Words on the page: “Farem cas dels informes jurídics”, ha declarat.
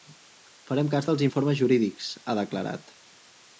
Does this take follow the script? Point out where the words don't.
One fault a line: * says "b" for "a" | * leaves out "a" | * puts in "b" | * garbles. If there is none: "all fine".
all fine